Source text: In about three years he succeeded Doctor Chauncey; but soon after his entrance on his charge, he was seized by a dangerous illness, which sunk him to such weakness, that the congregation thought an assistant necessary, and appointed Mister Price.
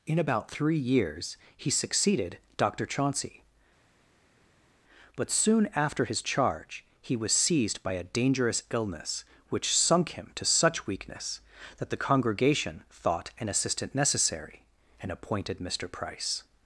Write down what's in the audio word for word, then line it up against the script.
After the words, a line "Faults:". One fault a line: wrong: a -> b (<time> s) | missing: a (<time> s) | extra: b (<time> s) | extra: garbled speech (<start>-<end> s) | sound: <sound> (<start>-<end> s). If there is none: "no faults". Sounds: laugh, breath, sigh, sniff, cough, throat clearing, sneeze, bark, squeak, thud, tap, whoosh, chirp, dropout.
In about three years he succeeded Doctor Chauncey; but soon after his charge, he was seized by a dangerous illness, which sunk him to such weakness, that the congregation thought an assistant necessary, and appointed Mister Price.
Faults:
missing: entrance on his (6.2 s)